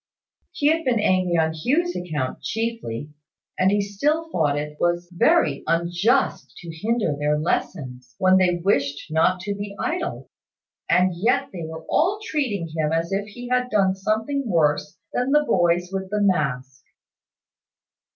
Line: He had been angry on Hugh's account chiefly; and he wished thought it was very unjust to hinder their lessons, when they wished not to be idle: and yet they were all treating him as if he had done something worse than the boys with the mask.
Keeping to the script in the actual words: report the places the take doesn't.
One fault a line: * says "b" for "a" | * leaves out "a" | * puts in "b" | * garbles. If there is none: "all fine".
* says "still" for "wished"